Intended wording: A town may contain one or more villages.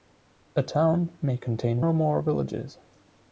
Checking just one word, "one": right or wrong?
wrong